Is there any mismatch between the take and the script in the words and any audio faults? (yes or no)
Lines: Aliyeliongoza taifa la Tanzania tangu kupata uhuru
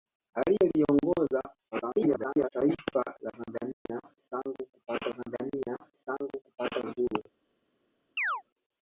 yes